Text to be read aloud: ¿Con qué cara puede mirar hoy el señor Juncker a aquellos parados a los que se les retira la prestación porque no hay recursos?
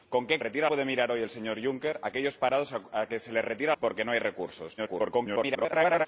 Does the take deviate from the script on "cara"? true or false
true